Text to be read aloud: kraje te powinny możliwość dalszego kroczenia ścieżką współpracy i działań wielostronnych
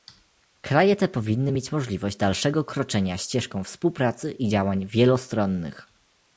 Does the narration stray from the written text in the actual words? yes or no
yes